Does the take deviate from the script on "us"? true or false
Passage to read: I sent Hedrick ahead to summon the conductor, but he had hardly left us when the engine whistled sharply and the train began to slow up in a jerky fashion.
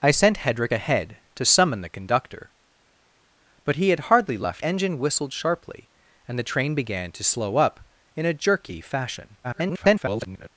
true